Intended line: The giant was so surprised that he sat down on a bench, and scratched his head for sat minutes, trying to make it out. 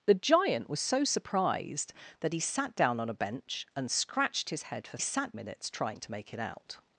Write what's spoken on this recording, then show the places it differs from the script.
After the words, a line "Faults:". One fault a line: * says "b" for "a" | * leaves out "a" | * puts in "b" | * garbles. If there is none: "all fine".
The giant was so surprised that he sat down on a bench, and scratched his head for sat minutes, trying to make it out.
Faults:
all fine